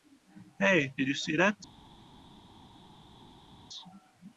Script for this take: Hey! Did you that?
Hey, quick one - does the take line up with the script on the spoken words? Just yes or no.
no